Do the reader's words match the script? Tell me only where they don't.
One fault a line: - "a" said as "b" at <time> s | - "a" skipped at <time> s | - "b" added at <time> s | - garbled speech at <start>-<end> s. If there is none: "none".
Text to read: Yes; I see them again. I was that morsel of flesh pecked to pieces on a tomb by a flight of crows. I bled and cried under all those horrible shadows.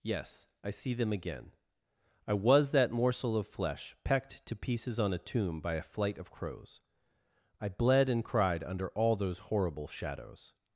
none